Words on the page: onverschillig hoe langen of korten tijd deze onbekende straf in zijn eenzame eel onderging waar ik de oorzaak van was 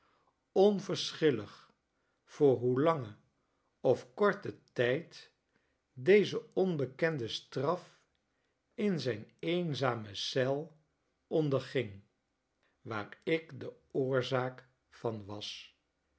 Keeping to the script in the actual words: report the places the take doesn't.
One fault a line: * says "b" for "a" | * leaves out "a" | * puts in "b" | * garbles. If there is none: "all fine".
* puts in "voor"